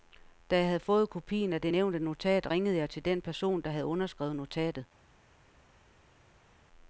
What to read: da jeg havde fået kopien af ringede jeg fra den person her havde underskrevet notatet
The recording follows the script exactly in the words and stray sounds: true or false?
false